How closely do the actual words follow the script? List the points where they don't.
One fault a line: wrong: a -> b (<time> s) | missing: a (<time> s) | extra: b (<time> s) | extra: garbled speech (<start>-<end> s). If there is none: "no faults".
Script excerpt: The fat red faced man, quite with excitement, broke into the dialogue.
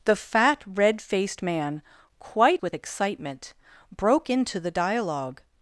no faults